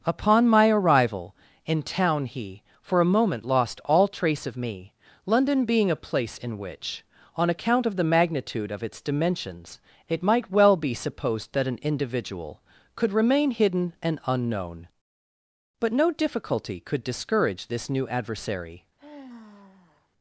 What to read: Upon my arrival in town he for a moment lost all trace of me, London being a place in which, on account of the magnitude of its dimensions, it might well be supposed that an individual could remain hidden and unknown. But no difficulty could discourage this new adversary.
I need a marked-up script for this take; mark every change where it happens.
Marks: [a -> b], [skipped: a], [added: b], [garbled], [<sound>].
Upon my arrival in town he for a moment lost all trace of me, London being a place in which, on account of the magnitude of its dimensions, it might well be supposed that an individual could remain hidden and unknown. But no difficulty could discourage this new adversary. [sigh]